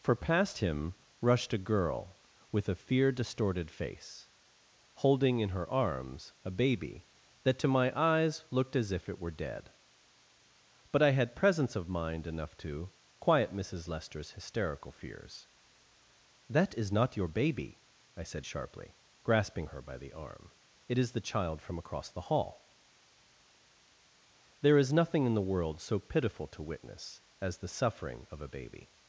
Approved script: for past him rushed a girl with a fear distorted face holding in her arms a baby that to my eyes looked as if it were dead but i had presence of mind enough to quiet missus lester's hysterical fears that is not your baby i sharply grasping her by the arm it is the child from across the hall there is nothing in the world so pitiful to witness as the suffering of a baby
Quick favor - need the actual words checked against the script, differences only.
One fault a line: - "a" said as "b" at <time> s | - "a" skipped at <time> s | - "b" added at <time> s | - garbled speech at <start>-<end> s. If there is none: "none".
- "said" added at 18.2 s